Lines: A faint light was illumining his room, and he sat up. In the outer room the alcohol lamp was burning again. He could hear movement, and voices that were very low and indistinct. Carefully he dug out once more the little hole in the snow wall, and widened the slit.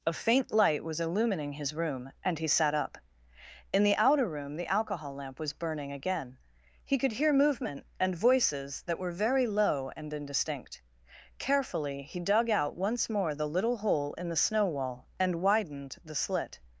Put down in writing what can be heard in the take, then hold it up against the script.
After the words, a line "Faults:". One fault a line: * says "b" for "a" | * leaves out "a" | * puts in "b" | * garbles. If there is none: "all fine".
A faint light was illumining his room, and he sat up. In the outer room the alcohol lamp was burning again. He could hear movement, and voices that were very low and indistinct. Carefully he dug out once more the little hole in the snow wall, and widened the slit.
Faults:
all fine